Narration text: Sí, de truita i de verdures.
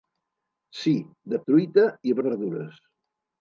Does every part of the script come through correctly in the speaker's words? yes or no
yes